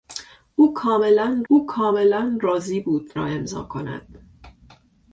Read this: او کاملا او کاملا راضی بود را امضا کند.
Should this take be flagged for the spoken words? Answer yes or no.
no